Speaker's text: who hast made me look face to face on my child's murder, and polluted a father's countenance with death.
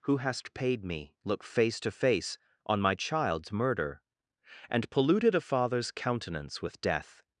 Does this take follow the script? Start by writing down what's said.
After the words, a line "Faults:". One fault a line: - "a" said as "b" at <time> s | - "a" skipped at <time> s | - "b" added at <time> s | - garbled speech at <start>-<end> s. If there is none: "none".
who hast paid me look face to face on my child's murder, and polluted a father's countenance with death.
Faults:
- "made" said as "paid" at 0.5 s